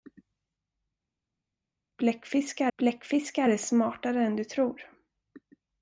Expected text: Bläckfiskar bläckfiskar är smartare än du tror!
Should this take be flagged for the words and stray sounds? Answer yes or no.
no